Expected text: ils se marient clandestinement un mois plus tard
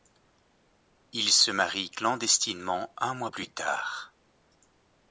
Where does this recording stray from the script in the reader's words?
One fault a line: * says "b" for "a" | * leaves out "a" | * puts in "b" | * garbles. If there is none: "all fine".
all fine